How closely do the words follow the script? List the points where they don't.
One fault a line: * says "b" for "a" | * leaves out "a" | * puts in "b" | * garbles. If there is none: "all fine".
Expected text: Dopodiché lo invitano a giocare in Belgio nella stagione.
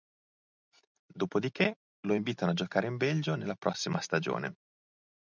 * puts in "prossima"